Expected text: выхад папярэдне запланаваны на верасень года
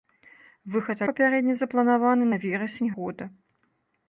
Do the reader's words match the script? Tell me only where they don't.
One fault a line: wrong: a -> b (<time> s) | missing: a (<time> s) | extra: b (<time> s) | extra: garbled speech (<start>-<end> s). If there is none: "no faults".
no faults